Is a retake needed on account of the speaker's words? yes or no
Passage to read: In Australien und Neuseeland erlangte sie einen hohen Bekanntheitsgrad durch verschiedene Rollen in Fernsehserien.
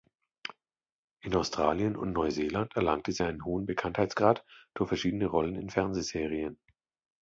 no